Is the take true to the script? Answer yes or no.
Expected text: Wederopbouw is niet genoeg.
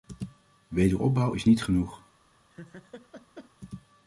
yes